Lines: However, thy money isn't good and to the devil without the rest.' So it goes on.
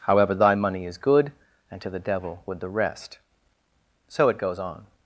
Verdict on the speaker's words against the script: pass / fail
fail